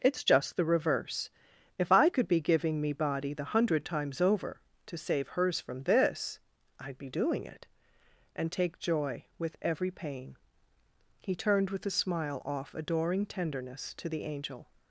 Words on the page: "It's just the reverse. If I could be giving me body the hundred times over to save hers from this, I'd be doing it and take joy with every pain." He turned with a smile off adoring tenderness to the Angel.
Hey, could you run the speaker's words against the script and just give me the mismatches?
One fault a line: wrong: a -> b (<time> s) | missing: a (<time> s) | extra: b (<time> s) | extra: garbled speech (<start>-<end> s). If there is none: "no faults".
no faults